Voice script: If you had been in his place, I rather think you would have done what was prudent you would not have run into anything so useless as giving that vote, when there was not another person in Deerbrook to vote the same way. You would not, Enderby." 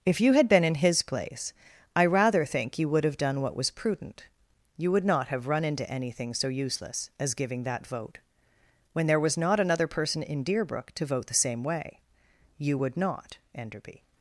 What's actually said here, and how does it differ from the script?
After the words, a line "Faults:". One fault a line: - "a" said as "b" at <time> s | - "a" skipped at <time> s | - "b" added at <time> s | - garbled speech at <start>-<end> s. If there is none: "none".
If you had been in his place, I rather think you would have done what was prudent you would not have run into anything so useless as giving that vote, when there was not another person in Deerbrook to vote the same way. You would not, Enderby."
Faults:
none